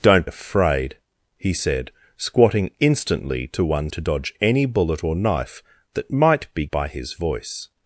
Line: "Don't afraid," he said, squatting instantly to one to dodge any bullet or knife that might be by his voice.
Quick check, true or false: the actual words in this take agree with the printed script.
true